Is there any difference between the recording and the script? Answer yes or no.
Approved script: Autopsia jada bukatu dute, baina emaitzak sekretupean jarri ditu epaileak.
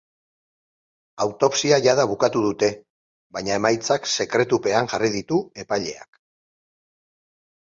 no